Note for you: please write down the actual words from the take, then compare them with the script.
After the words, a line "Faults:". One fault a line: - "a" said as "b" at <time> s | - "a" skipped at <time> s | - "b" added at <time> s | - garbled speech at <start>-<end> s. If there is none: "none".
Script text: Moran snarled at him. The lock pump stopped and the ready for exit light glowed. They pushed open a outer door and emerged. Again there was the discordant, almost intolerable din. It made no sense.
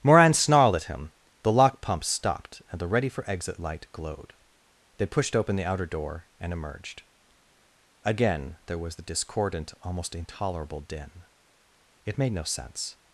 Moran snarled at him. The lock pump stopped and the ready for exit light glowed. They pushed open the outer door and emerged. Again there was the discordant, almost intolerable din. It made no sense.
Faults:
- "a" said as "the" at 5.5 s